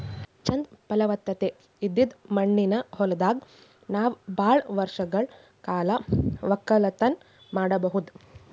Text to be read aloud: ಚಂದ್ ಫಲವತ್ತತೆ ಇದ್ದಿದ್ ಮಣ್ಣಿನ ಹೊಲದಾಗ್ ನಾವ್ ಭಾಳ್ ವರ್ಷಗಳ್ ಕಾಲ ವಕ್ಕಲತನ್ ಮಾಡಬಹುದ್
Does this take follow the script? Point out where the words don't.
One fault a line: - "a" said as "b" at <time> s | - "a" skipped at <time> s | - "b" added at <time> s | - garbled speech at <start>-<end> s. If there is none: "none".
none